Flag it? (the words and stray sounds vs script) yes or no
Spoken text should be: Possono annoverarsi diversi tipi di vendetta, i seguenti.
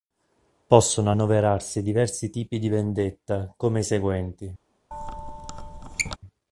yes